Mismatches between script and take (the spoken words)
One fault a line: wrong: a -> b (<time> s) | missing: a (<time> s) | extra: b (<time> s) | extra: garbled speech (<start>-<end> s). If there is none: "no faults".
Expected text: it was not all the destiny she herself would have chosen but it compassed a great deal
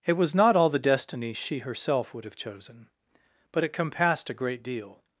no faults